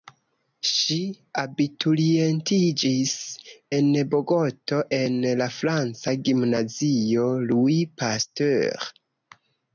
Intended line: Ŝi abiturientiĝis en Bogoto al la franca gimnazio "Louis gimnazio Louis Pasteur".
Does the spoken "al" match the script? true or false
false